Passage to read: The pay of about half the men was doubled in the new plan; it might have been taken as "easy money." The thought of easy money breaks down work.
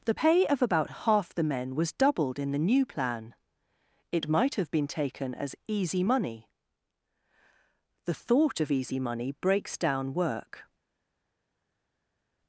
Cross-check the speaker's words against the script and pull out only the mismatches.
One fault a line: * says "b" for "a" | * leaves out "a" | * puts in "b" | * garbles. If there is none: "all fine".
all fine